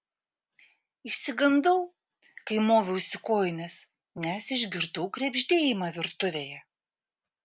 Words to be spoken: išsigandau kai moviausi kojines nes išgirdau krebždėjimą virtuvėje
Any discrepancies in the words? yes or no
no